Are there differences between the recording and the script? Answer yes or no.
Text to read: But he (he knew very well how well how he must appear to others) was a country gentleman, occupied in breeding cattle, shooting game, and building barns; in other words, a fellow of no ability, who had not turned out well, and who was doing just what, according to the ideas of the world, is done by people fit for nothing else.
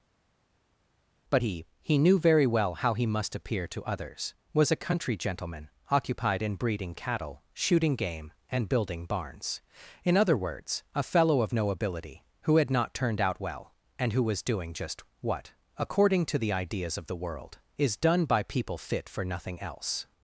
yes